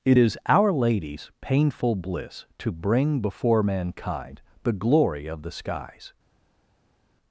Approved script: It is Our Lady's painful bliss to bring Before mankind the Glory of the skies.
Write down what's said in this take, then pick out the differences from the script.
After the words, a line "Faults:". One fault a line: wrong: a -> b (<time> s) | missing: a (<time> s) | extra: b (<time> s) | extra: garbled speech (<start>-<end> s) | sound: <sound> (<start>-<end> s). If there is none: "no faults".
It is Our Lady's painful bliss to bring Before mankind the Glory of the skies.
Faults:
no faults